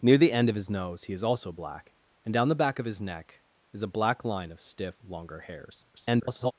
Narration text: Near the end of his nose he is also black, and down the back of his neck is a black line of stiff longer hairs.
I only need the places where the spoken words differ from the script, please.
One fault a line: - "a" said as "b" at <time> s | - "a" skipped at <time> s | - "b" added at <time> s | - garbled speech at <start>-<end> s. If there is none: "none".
- garbled speech at 5.9-6.5 s